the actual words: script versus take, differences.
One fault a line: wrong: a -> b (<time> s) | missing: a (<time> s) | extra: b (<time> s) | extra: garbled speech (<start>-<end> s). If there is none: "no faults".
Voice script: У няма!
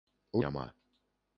no faults